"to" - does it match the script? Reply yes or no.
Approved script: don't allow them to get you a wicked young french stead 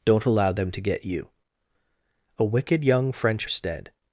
yes